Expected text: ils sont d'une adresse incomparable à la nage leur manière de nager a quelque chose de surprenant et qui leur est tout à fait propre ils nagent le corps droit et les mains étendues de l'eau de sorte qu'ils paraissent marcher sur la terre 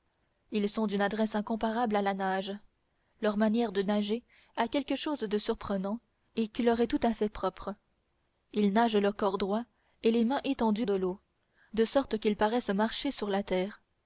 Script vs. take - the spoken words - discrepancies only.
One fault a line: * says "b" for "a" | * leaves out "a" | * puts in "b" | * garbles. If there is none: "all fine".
all fine